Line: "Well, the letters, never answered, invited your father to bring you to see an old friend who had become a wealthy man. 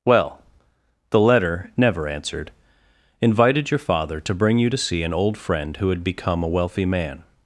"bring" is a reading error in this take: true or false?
false